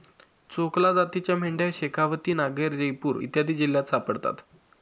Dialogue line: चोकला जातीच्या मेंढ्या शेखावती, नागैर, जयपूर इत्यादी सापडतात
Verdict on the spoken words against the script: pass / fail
fail